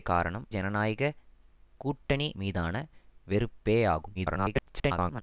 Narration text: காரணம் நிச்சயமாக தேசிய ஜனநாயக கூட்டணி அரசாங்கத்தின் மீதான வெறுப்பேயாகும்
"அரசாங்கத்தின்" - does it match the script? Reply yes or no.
no